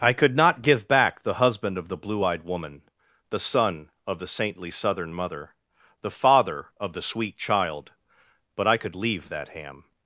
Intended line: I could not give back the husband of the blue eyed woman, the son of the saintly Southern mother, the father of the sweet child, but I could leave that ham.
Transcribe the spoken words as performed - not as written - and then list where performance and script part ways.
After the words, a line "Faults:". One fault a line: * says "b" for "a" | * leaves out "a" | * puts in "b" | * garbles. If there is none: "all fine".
I could not give back the husband of the blue eyed woman, the son of the saintly Southern mother, the father of the sweet child, but I could leave that ham.
Faults:
all fine